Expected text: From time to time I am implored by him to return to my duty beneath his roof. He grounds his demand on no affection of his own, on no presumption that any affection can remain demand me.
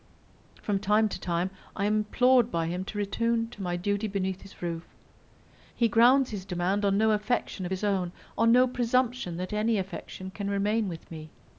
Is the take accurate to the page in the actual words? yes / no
no